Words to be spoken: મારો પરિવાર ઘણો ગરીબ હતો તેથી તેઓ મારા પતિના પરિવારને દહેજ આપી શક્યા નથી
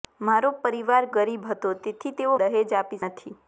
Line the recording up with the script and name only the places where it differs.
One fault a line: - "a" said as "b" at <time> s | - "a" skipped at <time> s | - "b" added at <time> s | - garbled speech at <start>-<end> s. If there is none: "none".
- "ઘણો" skipped at 1.0 s
- "મારા પતિના પરિવારને" skipped at 2.3 s
- "શક્યા" skipped at 3.0 s